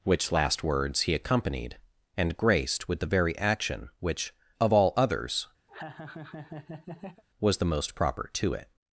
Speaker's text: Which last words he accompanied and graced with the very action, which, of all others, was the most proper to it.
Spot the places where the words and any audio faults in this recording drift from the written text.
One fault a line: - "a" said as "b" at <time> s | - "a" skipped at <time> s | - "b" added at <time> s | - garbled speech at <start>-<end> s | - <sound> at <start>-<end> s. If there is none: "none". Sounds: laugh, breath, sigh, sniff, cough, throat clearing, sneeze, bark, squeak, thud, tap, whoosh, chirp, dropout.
- laugh at 5.7-7.2 s